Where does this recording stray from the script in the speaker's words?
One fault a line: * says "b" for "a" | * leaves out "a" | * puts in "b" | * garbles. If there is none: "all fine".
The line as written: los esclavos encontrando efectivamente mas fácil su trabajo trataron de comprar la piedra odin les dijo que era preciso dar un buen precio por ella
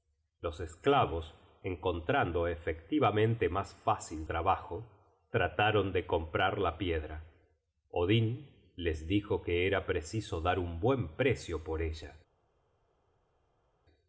* leaves out "su"